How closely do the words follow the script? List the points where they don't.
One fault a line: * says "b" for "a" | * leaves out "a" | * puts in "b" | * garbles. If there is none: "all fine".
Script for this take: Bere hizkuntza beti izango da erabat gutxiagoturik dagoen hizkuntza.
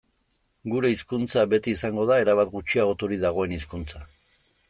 * says "Gure" for "Bere"